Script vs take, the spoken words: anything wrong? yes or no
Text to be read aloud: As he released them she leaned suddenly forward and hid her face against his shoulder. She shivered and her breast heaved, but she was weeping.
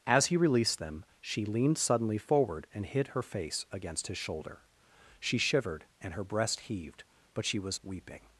no